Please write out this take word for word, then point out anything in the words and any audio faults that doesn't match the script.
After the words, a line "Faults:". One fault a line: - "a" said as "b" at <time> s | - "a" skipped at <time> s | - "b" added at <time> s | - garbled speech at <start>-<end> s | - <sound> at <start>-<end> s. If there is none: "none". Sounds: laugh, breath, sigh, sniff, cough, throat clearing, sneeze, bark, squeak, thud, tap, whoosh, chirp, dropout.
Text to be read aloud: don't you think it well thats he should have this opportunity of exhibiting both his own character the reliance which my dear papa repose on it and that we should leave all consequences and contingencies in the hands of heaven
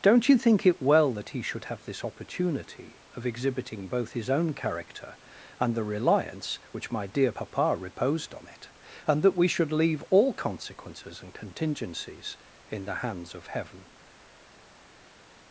don't you think it well that he should have this opportunity of exhibiting both his own character and the reliance which my dear papa reposed on it and that we should leave all consequences and contingencies in the hands of heaven
Faults:
- "thats" said as "that" at 1.1 s
- "and" added at 5.6 s
- "repose" said as "reposed" at 7.7 s